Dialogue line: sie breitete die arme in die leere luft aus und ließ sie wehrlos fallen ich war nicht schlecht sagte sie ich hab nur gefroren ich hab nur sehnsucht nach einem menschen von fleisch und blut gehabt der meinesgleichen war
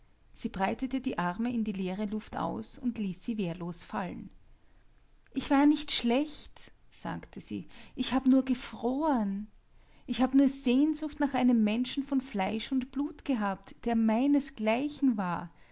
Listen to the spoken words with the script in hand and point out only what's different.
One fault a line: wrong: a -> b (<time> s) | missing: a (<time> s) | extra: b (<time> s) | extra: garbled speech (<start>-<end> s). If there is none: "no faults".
no faults